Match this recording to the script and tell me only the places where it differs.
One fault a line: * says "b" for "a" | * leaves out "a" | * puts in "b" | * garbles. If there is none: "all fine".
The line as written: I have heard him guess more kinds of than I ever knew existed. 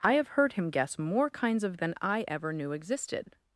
all fine